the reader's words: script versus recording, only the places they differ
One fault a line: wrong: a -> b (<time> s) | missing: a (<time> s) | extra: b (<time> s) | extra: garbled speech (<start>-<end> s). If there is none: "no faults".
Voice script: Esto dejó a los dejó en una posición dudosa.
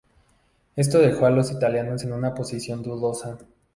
wrong: dejó -> italianos (1.5 s)